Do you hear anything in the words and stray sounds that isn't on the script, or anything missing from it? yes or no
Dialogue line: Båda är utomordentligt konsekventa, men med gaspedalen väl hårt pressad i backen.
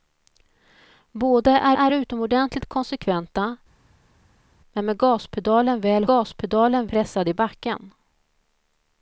yes